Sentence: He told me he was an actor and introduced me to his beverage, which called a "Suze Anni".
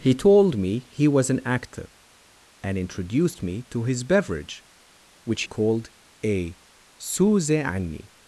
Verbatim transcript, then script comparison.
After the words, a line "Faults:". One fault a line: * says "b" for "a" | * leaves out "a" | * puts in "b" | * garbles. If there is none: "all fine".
He told me he was an actor and introduced me to his beverage, which called a "Suze Anni".
Faults:
all fine